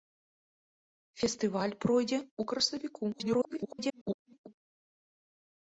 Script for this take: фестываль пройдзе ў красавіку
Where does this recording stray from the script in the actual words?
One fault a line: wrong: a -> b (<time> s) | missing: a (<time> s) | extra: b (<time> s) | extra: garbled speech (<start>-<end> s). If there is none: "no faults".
extra: garbled speech (3.1-4.5 s)